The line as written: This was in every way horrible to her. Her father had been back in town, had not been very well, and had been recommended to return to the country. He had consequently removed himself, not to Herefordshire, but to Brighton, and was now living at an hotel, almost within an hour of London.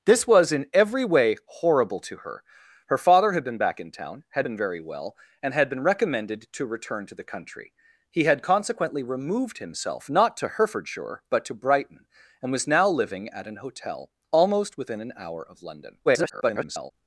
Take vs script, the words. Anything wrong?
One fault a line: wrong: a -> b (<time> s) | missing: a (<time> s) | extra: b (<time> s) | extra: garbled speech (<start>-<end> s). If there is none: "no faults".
missing: not (4.5 s)
extra: garbled speech (16.1-16.9 s)